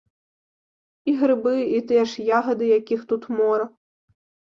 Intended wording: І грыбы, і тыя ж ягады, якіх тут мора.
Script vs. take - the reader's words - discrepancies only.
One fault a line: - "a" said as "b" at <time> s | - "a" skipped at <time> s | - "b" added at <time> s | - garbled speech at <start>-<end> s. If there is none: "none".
none